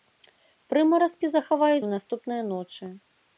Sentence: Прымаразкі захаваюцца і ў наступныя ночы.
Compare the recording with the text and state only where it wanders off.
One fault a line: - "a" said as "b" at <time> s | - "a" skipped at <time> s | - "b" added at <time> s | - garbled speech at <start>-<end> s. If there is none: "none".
- "і" skipped at 1.9 s